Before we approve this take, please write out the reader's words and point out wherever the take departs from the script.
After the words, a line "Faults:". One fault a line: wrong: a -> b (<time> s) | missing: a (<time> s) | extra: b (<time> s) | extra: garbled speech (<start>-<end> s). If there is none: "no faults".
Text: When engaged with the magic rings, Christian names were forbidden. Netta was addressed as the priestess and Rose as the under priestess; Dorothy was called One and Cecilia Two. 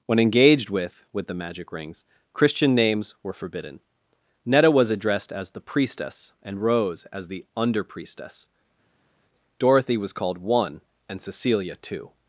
When engaged with with the magic rings, Christian names were forbidden. Netta was addressed as the priestess and Rose as the under priestess; Dorothy was called One and Cecilia Two.
Faults:
extra: with (1.1 s)